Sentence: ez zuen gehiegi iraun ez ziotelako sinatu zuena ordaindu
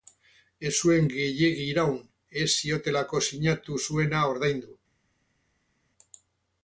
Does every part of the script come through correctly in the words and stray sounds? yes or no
yes